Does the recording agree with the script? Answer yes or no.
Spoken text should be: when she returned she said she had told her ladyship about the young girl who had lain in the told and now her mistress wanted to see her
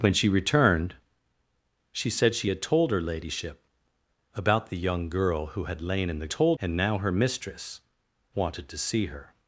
yes